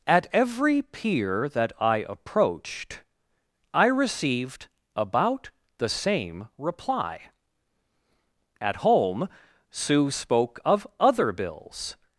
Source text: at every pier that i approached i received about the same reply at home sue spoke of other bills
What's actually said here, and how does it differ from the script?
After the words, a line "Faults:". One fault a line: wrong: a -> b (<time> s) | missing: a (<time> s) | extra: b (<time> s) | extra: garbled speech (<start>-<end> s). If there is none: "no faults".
at every pier that i approached i received about the same reply at home sue spoke of other bills
Faults:
no faults